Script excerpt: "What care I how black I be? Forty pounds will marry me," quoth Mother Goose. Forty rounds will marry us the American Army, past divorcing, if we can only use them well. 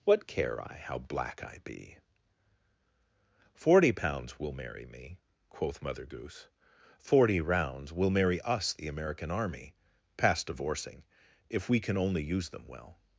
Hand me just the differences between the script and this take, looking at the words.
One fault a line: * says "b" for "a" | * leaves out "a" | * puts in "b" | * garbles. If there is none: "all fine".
all fine